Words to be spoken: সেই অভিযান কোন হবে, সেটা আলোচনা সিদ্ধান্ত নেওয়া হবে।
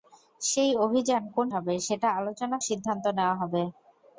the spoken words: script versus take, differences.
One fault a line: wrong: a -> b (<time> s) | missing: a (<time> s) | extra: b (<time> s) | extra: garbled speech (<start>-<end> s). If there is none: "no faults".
no faults